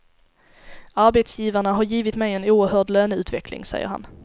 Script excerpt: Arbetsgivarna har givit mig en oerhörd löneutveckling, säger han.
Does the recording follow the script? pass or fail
pass